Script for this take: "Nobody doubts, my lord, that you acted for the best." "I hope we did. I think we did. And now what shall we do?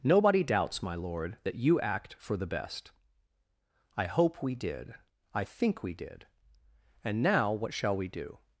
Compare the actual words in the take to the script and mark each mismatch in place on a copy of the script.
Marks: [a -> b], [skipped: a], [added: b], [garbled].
"Nobody doubts, my lord, that you [acted -> act] for the best." "I hope we did. I think we did. And now what shall we do?